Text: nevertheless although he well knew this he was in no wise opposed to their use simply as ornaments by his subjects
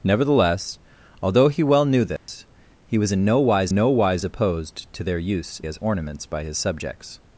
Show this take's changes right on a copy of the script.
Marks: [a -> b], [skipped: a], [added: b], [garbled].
nevertheless although he well knew this he was in no wise [added: no wise] opposed to their use [skipped: simply] as ornaments by his subjects